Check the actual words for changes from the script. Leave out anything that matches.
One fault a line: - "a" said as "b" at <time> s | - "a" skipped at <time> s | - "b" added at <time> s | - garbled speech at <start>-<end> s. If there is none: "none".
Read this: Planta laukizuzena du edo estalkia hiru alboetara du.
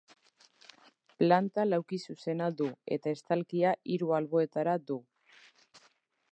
- "edo" said as "eta" at 3.0 s